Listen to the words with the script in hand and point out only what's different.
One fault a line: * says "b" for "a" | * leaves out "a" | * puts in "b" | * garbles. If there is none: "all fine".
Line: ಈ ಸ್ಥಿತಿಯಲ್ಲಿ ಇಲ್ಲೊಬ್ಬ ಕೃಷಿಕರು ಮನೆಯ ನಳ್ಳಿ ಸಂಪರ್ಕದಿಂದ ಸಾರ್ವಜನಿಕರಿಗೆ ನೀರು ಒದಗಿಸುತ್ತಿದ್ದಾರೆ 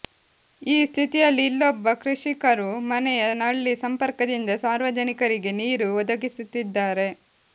all fine